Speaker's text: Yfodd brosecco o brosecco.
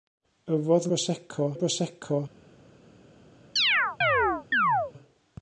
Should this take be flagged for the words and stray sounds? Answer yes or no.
yes